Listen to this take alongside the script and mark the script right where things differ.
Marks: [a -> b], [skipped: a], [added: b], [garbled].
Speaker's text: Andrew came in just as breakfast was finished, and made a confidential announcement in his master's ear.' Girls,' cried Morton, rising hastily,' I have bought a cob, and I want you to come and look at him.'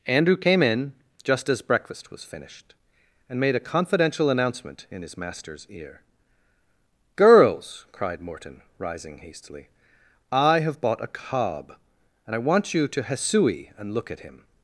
Andrew came in just as breakfast was finished, and made a confidential announcement in his master's ear.' Girls,' cried Morton, rising hastily,' I have bought a cob, and I want you to [come -> hesui] and look at him.'